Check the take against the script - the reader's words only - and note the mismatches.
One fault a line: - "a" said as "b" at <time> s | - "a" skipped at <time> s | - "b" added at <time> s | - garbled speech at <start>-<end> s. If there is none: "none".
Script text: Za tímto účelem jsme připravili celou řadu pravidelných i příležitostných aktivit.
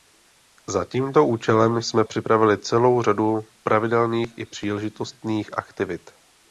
none